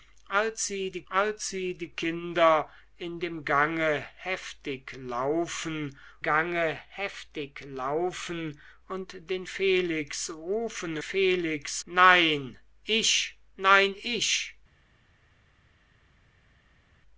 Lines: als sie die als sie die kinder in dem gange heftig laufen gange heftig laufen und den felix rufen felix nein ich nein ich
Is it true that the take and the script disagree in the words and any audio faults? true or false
false